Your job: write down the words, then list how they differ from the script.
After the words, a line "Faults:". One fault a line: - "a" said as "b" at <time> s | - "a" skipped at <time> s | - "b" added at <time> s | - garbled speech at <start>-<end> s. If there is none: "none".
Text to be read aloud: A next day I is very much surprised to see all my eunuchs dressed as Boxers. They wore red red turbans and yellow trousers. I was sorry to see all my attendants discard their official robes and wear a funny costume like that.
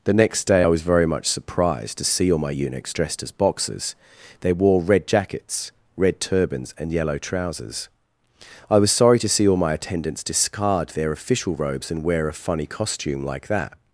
The next day I was very much surprised to see all my eunuchs dressed as Boxers. They wore red jackets, red turbans and yellow trousers. I was sorry to see all my attendants discard their official robes and wear a funny costume like that.
Faults:
- "A" said as "The" at 0.0 s
- "is" said as "was" at 0.7 s
- "jackets" added at 5.1 s